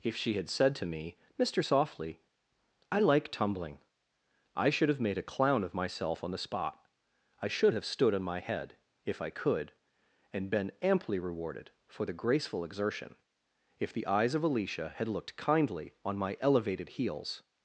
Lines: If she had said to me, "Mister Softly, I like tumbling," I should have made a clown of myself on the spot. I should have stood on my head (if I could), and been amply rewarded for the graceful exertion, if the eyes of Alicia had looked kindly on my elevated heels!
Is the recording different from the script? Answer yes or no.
no